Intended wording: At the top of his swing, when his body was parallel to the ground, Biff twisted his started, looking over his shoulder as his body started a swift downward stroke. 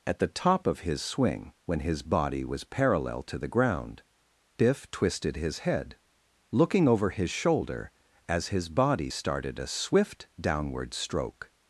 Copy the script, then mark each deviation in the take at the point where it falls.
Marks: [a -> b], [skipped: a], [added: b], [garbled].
At the top of his swing, when his body was parallel to the ground, Biff twisted his [started, -> head] looking over his shoulder as his body started a swift downward stroke.